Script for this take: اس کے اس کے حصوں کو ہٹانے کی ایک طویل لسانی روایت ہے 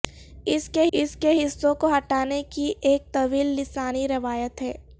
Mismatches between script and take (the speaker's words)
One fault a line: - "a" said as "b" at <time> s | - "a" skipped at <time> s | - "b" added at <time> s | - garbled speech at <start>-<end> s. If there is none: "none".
none